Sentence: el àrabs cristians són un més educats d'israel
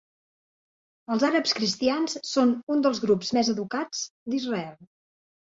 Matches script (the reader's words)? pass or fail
fail